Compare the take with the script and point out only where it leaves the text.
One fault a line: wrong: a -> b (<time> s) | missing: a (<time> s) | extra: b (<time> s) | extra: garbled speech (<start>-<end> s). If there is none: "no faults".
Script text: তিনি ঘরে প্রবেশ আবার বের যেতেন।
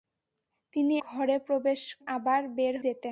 no faults